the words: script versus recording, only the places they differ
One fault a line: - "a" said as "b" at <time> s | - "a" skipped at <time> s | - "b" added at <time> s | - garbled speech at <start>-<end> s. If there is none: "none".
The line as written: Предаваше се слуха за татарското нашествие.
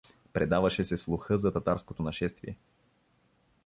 none